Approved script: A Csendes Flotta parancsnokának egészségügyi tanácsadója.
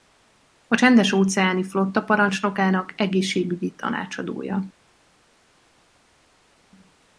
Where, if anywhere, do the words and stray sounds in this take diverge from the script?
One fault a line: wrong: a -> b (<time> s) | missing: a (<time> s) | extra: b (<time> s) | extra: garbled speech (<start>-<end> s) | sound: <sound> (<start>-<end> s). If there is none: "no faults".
extra: óceáni (1.1 s)